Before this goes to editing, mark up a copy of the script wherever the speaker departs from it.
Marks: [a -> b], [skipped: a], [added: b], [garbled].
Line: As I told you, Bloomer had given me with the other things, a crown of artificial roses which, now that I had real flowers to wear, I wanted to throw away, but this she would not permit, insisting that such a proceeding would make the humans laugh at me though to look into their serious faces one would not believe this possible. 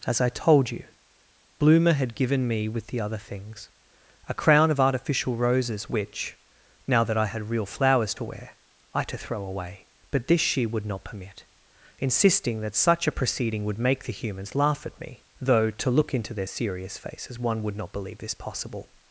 As I told you, Bloomer had given me with the other things, a crown of artificial roses which, now that I had real flowers to wear, I [skipped: wanted] to throw away, but this she would not permit, insisting that such a proceeding would make the humans laugh at me though to look into their serious faces one would not believe this possible.